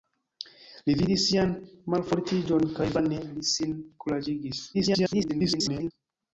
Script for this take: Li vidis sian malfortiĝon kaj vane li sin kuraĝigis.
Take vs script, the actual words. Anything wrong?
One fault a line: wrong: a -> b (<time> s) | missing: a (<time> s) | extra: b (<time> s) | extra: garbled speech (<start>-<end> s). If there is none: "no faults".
extra: garbled speech (4.7-5.9 s)